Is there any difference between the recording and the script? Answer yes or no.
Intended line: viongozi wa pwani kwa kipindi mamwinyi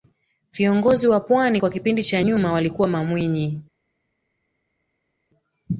yes